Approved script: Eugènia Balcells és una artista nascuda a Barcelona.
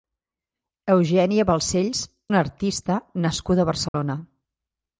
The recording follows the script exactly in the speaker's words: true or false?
false